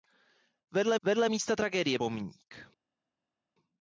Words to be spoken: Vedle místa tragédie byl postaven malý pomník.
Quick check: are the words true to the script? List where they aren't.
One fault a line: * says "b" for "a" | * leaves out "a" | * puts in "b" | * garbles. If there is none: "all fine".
* puts in "vedle"
* leaves out "byl postaven malý"